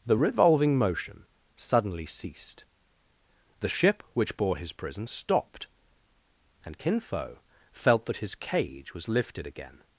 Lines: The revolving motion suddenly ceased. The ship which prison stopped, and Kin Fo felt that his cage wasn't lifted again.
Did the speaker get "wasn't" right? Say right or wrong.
wrong